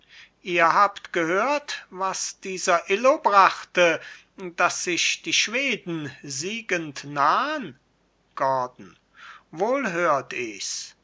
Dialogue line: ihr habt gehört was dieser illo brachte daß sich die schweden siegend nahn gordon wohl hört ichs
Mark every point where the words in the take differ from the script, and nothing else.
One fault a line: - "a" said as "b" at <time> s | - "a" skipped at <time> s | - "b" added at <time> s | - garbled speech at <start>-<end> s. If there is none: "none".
none